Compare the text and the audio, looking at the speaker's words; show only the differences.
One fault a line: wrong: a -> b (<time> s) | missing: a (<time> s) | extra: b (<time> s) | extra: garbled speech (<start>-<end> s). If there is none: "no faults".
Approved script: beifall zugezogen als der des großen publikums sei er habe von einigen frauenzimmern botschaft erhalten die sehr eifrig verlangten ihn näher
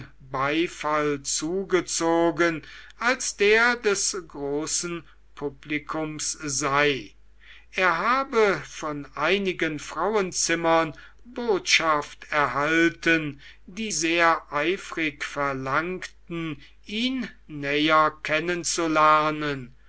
no faults